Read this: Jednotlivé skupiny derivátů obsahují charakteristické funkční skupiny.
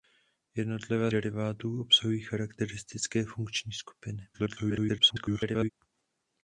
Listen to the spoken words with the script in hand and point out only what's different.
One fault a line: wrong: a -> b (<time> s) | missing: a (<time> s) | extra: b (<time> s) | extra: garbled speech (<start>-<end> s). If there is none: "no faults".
missing: skupiny (1.1 s)
extra: garbled speech (4.3-5.7 s)